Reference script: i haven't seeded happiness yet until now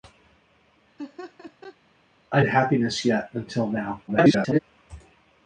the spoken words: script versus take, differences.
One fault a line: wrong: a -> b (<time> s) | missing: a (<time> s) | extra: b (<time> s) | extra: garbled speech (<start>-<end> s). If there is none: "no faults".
missing: haven't seeded (2.4 s)
extra: garbled speech (4.1-4.6 s)